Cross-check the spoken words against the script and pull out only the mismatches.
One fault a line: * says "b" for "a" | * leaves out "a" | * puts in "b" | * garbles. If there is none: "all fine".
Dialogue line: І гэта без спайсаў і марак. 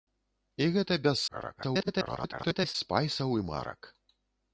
* garbles